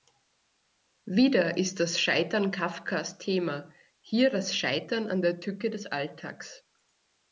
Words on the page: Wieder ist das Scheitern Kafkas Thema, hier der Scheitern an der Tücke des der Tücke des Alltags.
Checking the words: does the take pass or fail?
fail